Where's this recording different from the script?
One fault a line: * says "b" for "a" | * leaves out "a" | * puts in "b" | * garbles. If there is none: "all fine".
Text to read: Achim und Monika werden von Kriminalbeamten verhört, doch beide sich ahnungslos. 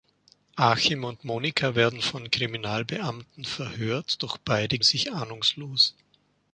all fine